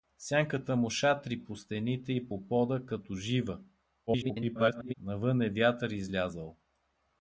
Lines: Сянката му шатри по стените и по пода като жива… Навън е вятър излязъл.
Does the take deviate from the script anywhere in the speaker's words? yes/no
yes